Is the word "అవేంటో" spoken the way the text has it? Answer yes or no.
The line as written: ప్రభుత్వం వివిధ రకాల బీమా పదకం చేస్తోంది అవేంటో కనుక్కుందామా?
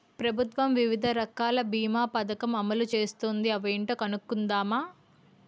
yes